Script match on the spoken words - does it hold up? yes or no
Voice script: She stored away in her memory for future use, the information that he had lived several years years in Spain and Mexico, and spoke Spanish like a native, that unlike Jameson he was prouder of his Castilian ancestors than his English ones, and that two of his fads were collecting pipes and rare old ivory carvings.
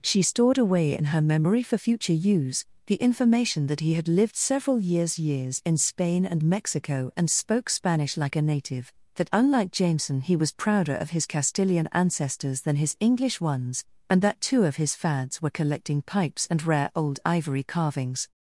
yes